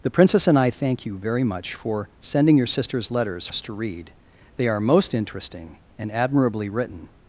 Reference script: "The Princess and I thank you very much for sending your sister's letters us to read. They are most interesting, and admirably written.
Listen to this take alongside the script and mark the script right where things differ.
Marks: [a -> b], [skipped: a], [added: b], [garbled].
"The Princess and I thank you very much for sending your sister's letters us to read. They are most interesting, and admirably written.